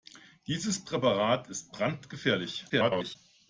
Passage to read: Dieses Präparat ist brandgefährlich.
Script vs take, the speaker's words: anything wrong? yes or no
yes